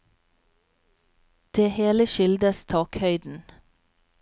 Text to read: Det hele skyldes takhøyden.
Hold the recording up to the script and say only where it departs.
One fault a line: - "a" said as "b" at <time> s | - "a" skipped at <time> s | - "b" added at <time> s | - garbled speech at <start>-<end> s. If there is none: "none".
none